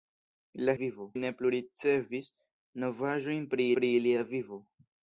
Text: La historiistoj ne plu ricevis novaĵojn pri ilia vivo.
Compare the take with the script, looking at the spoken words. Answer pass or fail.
fail